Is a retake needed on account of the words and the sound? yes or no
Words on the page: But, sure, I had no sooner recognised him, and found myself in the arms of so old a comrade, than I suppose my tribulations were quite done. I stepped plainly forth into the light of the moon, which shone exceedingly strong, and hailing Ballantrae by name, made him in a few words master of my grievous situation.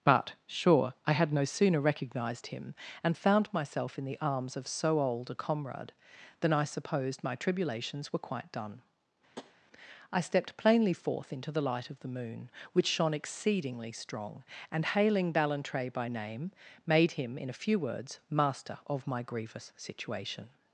yes